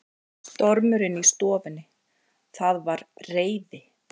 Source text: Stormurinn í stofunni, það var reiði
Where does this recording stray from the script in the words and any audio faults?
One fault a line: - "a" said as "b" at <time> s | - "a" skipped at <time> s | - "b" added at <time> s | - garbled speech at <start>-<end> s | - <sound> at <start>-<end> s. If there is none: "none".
none